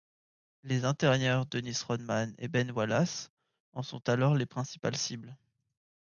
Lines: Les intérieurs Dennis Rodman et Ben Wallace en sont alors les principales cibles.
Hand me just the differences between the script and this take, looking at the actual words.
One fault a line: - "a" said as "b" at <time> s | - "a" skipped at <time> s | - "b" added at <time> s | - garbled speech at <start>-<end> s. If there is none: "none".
none